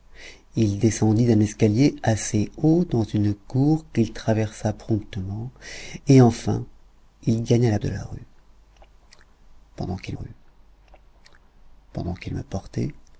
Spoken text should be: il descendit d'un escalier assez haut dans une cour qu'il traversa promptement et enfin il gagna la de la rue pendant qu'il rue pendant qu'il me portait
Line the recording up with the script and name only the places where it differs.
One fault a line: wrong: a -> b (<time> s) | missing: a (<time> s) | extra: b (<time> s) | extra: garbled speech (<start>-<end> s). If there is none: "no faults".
no faults